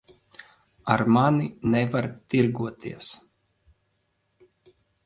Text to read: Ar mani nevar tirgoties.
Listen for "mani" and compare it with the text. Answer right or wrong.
right